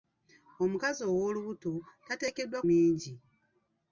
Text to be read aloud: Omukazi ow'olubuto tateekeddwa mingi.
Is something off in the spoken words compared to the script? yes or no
no